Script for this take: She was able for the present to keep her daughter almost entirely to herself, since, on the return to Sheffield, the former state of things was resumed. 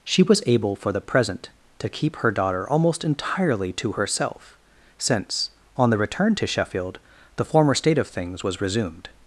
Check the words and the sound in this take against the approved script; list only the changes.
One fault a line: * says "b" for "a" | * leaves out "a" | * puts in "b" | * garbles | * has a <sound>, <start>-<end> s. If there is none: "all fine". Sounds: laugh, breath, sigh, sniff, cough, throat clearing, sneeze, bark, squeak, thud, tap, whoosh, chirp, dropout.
all fine